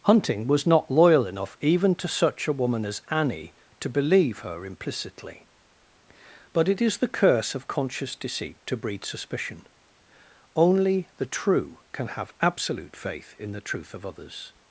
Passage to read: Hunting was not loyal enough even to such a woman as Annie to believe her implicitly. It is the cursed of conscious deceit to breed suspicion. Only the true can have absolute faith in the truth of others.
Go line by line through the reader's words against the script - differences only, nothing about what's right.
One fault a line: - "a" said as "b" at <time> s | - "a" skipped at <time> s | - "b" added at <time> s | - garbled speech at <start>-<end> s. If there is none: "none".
- "But" added at 6.5 s
- "cursed" said as "curse" at 7.1 s